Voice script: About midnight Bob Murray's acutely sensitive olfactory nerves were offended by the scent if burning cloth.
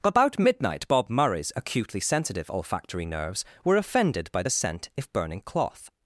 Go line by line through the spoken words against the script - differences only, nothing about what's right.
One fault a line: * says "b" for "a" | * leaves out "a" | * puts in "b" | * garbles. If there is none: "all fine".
all fine